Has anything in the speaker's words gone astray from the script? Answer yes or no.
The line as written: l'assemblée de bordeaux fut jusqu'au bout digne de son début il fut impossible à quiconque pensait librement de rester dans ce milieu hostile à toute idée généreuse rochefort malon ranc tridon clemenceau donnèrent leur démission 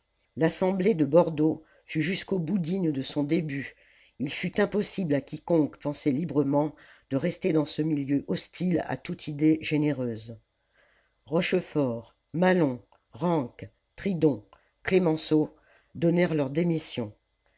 no